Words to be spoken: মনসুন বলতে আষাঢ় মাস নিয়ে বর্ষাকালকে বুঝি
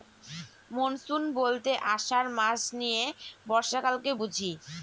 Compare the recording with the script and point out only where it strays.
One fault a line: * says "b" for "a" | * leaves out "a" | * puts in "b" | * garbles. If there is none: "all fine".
all fine